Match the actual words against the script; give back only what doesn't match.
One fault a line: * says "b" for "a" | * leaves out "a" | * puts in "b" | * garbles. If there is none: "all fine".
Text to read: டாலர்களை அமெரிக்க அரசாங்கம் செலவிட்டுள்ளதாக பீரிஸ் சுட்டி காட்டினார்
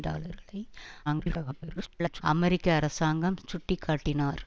* garbles
* leaves out "செலவிட்டுள்ளதாக பீரிஸ்"